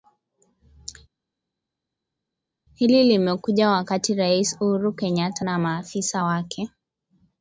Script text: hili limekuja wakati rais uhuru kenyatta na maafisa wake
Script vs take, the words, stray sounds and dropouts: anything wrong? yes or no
no